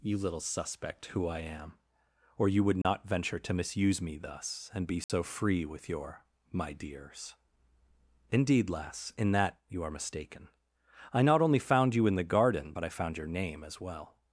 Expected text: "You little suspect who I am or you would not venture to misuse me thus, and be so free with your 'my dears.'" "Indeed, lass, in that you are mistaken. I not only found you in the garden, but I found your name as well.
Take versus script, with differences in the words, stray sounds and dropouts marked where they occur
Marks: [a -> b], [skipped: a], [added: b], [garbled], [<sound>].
"You little suspect who I am or you would not [dropout] venture to misuse me thus, and be so [dropout] free with your 'my dears.'" "Indeed, lass, in that you are mistaken. I not only found you in the garden, but I found your name as well.